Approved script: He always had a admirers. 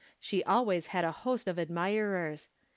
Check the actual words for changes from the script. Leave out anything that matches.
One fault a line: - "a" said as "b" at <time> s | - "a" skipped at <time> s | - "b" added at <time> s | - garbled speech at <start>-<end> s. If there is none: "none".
- "He" said as "She" at 0.2 s
- "host of" added at 1.1 s